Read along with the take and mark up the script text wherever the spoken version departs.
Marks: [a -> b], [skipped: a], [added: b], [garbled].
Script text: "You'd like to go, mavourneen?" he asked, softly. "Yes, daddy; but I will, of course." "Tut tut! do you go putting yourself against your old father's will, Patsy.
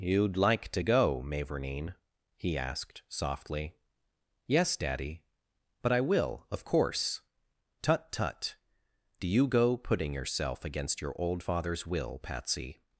"You'd like to go, mavourneen?" he asked, softly. "Yes, daddy; but I will, of course." "Tut tut! do you go putting yourself against your old father's will, Patsy.